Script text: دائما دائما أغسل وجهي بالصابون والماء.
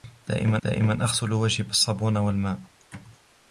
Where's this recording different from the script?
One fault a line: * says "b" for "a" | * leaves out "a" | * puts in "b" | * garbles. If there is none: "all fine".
all fine